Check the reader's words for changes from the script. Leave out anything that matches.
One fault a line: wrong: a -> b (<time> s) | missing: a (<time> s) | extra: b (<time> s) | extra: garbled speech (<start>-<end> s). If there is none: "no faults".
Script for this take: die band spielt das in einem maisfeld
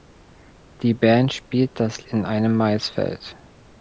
no faults